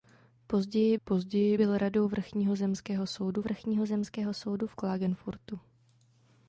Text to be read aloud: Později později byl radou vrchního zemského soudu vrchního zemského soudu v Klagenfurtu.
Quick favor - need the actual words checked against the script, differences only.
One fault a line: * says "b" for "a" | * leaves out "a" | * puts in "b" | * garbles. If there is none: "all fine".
all fine